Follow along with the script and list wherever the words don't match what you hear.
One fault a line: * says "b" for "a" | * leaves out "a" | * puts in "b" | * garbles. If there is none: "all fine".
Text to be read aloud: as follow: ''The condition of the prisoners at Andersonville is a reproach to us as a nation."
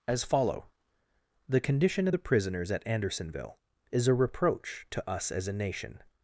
all fine